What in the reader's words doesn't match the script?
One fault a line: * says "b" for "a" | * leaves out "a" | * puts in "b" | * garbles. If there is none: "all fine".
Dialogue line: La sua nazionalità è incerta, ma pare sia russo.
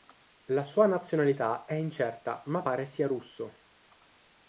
all fine